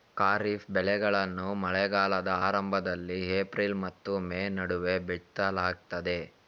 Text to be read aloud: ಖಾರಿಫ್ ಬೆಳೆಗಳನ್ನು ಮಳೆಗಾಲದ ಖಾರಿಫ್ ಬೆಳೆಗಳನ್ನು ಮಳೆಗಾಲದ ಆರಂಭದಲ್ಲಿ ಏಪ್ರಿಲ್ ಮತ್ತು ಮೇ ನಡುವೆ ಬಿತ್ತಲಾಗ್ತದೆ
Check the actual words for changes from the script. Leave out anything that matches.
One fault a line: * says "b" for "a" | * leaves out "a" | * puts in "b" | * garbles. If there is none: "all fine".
* leaves out "ಖಾರಿಫ್ ಬೆಳೆಗಳನ್ನು ಮಳೆಗಾಲದ"